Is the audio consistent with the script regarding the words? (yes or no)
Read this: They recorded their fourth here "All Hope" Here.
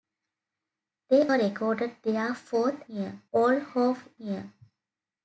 yes